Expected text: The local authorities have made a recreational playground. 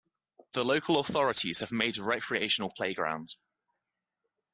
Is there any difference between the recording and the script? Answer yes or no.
no